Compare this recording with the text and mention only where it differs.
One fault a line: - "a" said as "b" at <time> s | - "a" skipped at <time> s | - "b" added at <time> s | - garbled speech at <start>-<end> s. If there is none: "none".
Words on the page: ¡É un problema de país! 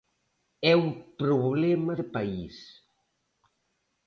none